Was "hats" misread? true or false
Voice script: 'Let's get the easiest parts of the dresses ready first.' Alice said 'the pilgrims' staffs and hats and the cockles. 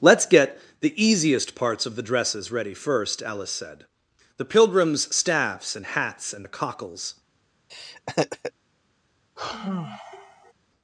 false